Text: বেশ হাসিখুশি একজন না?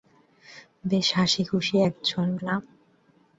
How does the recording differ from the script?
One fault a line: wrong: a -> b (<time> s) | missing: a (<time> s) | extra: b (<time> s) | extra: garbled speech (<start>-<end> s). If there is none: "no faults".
no faults